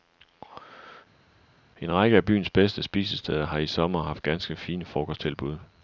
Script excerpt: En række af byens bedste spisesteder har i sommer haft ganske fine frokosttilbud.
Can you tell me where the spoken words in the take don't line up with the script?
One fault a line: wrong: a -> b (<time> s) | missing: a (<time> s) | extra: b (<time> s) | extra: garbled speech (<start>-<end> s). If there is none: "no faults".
no faults